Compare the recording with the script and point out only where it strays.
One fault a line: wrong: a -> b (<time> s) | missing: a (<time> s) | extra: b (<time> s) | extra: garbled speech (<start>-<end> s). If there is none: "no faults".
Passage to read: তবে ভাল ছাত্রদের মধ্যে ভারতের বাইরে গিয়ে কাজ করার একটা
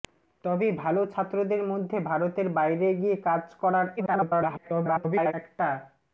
extra: garbled speech (4.0-5.3 s)